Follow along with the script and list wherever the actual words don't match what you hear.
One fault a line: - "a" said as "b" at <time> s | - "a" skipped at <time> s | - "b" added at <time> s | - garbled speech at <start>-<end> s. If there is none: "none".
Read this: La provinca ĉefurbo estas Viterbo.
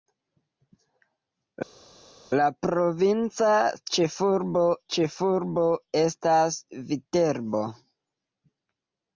- "ĉefurbo" added at 5.0 s